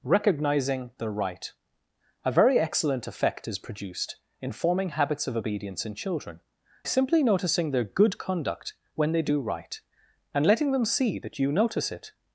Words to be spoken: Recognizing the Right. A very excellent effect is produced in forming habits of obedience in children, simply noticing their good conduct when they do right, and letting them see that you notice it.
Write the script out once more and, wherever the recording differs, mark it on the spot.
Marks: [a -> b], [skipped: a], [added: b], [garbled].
Recognizing the Right. A very excellent effect is produced in forming habits of obedience in children, simply noticing their good conduct when they do right, and letting them see that you notice it.